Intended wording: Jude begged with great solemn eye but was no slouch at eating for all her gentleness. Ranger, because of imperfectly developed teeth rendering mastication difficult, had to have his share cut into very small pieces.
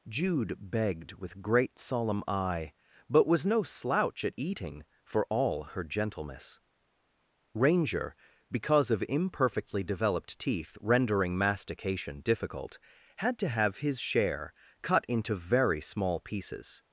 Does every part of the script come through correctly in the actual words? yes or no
yes